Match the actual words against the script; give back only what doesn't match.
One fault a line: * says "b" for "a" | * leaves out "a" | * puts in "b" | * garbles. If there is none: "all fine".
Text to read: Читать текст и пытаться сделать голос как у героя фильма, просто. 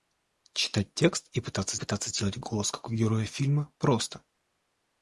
* puts in "пытаться"